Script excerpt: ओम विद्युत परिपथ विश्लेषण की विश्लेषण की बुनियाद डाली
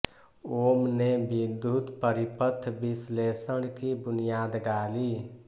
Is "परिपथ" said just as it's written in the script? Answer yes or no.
yes